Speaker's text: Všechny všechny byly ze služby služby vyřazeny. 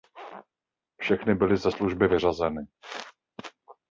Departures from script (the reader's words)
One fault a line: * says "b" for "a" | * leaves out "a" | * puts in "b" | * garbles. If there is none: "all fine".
* leaves out "všechny"
* leaves out "služby"